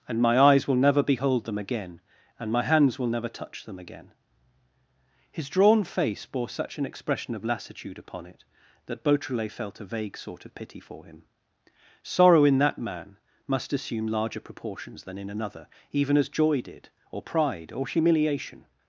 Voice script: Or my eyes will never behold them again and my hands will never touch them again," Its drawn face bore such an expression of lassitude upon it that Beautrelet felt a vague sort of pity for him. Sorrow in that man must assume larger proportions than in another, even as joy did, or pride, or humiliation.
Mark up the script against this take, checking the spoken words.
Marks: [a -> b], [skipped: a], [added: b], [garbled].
[Or -> And] my eyes will never behold them again and my hands will never touch them again," [Its -> His] drawn face bore such an expression of lassitude upon it that Beautrelet felt a vague sort of pity for him. Sorrow in that man must assume larger proportions than in another, even as joy did, or pride, or humiliation.